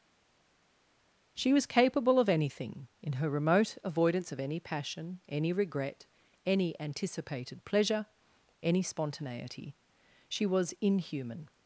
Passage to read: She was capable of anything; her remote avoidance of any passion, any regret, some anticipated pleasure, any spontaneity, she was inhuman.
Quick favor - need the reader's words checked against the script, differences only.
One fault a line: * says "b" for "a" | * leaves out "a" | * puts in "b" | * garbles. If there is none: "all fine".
* puts in "in"
* says "any" for "some"